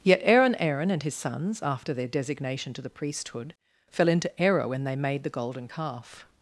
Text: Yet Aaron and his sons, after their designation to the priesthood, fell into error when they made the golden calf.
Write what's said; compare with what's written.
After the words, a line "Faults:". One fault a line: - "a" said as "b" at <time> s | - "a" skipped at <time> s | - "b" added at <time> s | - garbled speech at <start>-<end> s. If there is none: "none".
Yet Aaron Aaron and his sons, after their designation to the priesthood, fell into error when they made the golden calf.
Faults:
- "Aaron" added at 0.6 s